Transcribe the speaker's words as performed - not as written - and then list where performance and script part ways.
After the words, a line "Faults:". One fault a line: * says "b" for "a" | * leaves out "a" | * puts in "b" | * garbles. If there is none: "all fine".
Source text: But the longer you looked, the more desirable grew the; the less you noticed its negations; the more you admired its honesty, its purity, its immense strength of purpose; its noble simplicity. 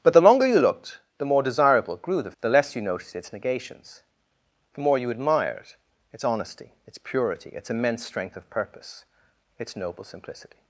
But the longer you looked, the more desirable grew the; the less you noticed its negations; the more you admired its honesty, its purity, its immense strength of purpose; its noble simplicity.
Faults:
all fine